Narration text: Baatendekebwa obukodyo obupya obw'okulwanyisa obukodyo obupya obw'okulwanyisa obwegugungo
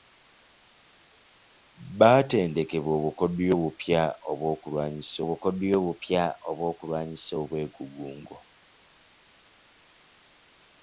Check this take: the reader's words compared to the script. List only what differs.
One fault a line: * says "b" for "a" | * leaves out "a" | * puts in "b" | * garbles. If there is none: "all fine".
all fine